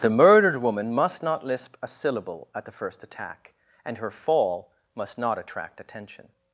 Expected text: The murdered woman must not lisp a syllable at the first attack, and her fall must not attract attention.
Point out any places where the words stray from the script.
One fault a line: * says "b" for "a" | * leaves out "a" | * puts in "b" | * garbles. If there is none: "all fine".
all fine